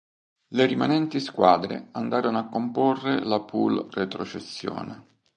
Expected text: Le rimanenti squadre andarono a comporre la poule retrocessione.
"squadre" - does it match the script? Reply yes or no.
yes